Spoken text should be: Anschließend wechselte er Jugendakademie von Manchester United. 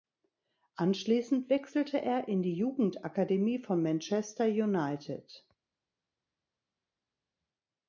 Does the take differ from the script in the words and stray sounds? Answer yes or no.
yes